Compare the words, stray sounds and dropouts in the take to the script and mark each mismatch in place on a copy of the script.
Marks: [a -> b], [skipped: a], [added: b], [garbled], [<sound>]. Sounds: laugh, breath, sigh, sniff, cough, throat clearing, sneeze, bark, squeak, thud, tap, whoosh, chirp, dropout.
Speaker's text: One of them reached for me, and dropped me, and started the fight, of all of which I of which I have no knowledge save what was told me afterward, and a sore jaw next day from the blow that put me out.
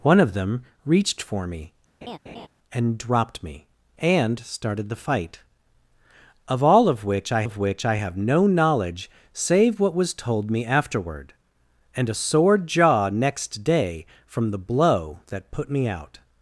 One of them reached for me, [laugh] and dropped me, and started the fight, of all of which I of which I have no knowledge save what was told me afterward, and a sore jaw next day from the blow that put me out.